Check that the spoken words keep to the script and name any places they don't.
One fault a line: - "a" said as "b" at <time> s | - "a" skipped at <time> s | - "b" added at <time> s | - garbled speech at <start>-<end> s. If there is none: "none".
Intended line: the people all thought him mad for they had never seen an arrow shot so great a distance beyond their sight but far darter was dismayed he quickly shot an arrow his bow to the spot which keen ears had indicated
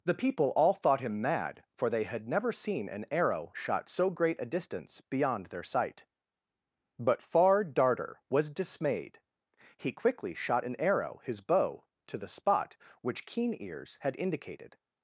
none